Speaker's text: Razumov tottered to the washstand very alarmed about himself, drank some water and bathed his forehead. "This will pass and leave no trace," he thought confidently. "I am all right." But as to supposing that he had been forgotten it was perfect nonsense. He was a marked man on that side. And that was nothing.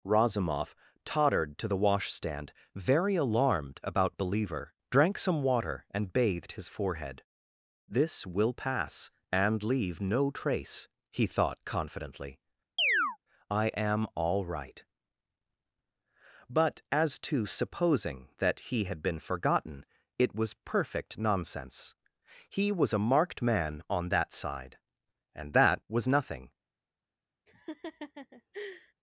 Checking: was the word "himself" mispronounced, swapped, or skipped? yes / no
yes